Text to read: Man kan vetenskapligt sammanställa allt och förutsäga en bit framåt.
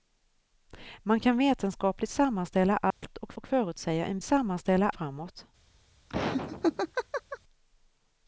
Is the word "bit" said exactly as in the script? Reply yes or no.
no